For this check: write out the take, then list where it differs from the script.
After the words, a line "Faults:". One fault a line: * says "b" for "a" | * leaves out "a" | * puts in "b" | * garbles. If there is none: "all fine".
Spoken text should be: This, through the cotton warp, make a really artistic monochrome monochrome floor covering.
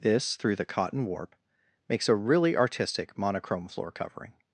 This, through the cotton warp, makes a really artistic monochrome floor covering.
Faults:
* says "makes" for "make"
* leaves out "monochrome"